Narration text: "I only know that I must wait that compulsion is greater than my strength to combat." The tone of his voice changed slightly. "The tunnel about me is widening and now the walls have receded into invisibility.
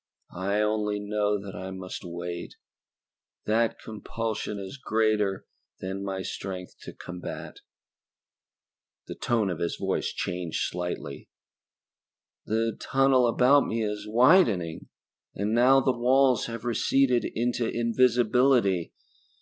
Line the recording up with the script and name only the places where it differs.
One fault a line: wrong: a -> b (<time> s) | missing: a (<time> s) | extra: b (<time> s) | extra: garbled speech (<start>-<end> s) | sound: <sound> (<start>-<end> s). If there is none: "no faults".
no faults